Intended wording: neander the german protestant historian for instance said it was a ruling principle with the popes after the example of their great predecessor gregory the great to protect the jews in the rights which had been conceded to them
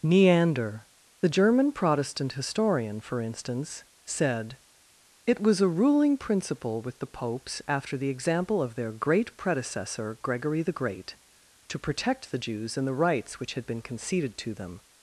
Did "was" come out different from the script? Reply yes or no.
no